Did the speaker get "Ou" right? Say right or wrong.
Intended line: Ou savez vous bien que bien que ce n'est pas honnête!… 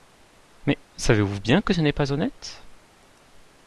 wrong